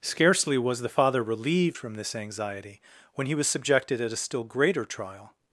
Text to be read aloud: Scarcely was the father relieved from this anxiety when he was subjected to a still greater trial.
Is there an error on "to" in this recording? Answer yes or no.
yes